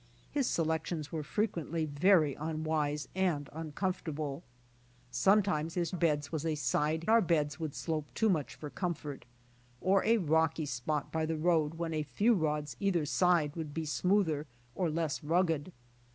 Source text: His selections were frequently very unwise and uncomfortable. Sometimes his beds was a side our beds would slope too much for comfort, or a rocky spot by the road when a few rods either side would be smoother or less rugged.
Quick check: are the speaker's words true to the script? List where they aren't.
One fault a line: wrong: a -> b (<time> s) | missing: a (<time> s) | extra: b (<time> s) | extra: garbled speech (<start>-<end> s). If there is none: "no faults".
no faults